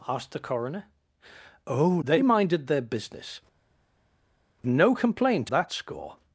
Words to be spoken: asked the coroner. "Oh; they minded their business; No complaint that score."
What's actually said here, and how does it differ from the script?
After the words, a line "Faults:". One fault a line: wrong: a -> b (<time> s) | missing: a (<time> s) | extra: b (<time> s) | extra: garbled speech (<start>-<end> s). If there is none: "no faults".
asked the coroner. "Oh; they minded their business; No complaint that score."
Faults:
no faults